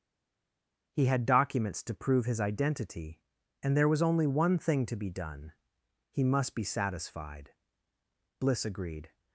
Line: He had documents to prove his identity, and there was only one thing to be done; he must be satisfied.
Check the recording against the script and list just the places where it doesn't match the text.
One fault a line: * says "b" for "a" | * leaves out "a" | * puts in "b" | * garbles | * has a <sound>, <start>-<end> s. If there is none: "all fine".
* puts in "Bliss agreed"